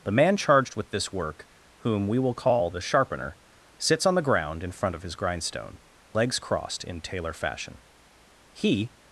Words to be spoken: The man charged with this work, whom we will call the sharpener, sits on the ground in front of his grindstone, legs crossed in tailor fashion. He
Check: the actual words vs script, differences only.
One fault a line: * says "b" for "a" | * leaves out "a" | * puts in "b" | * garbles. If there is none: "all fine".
all fine